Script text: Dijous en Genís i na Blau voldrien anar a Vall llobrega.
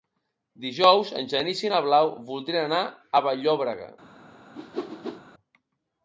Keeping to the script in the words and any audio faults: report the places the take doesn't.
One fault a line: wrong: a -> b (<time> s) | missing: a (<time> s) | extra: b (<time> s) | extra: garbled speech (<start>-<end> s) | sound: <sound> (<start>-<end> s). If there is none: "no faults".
sound: whoosh (4.5-5.2 s)